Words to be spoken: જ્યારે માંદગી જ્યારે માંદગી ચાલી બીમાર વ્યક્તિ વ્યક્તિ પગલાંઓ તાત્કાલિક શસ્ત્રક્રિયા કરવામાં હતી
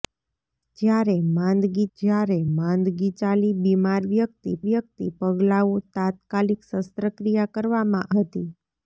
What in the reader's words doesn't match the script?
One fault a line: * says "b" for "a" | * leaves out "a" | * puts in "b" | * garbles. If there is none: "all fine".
all fine